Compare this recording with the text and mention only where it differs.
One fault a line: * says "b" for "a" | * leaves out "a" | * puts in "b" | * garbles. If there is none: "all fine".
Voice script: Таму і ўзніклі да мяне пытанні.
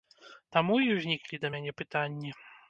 all fine